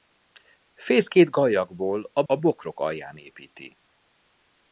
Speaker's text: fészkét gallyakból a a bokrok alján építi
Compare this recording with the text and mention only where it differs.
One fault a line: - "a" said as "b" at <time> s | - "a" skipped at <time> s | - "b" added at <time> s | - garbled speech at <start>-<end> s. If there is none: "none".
none